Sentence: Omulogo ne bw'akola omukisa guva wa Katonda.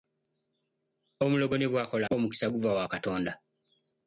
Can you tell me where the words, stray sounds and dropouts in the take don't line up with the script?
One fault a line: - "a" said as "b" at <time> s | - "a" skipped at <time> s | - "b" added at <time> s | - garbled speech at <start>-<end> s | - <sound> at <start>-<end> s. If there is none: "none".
none